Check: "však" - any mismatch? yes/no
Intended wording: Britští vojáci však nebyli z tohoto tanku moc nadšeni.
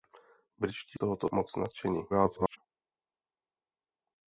yes